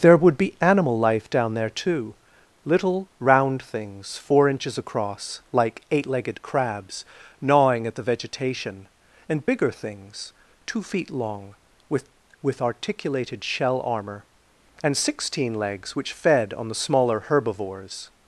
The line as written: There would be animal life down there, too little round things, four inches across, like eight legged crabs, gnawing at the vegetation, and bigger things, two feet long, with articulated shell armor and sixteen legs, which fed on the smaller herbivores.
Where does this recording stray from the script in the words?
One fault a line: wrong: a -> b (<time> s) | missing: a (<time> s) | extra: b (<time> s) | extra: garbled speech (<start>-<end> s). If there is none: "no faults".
extra: with (12.4 s)